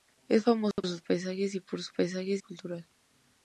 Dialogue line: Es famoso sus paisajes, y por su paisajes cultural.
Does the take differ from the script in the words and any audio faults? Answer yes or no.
yes